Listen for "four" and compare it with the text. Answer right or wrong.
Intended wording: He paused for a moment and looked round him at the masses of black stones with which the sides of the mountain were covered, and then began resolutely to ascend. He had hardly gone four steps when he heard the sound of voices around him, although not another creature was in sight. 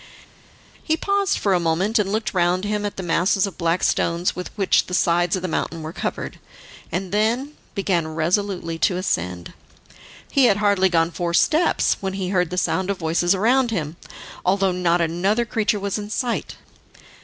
right